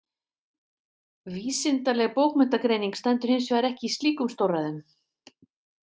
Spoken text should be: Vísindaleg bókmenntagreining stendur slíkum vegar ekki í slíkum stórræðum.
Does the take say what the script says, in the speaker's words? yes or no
no